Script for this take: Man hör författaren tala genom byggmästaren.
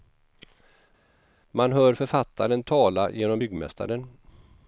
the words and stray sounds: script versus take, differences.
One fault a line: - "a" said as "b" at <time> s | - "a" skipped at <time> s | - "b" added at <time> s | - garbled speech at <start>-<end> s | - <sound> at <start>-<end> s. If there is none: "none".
none